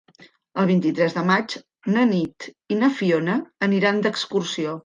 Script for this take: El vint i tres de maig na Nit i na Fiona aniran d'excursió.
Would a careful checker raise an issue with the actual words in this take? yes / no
no